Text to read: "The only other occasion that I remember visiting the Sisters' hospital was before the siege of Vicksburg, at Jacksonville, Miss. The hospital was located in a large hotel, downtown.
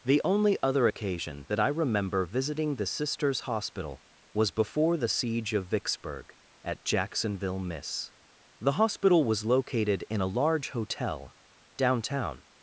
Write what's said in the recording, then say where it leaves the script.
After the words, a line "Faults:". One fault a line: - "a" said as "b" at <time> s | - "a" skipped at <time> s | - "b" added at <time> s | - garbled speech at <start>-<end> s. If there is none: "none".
"The only other occasion that I remember visiting the Sisters' hospital was before the siege of Vicksburg, at Jacksonville, Miss. The hospital was located in a large hotel, downtown.
Faults:
none